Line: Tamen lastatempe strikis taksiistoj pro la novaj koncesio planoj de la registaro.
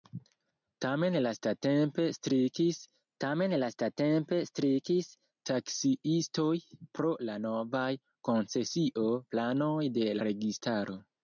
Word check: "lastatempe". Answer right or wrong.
right